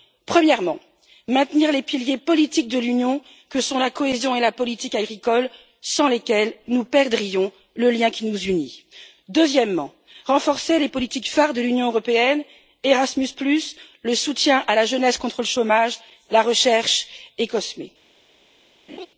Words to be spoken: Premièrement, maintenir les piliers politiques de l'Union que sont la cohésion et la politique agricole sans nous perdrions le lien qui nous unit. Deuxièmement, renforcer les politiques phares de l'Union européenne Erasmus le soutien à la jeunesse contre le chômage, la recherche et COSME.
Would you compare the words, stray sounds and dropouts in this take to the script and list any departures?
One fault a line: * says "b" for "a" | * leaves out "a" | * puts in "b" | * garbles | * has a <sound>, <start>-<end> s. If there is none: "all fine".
* puts in "lesquels"
* has a laugh, 18.9-19.1 s